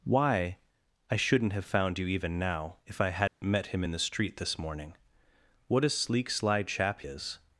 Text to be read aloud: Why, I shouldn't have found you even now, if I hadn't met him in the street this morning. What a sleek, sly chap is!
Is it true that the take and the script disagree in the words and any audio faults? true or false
true